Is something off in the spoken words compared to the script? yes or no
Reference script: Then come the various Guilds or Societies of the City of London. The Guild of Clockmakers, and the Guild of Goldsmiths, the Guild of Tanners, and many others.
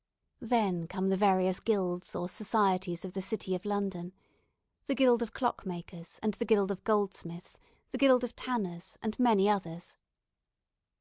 no